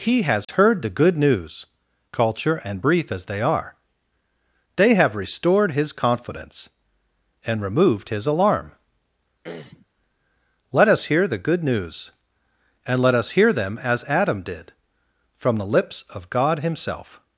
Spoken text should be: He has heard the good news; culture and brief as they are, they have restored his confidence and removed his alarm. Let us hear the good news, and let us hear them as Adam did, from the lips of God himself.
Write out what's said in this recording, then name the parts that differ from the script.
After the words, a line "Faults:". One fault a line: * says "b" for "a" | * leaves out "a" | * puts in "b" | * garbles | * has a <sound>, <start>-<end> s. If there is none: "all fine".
He has heard the good news; culture and brief as they are, they have restored his confidence and removed his alarm. Let us hear the good news, and let us hear them as Adam did, from the lips of God himself.
Faults:
* has a dropout, 0.4-0.5 s
* has a throat clearing, 9.4-9.9 s